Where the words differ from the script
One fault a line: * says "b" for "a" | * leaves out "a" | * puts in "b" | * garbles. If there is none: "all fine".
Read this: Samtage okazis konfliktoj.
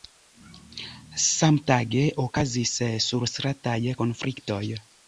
* puts in "surstrataj"